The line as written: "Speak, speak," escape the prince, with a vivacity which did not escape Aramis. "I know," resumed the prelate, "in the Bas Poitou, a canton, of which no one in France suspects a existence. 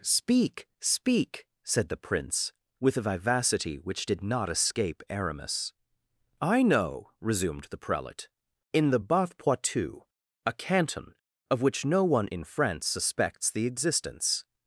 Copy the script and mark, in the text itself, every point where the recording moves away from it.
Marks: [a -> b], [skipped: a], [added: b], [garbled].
"Speak, speak," [escape -> said] the prince, with a vivacity which did not escape Aramis. "I know," resumed the prelate, "in the Bas Poitou, a canton, of which no one in France suspects [a -> the] existence.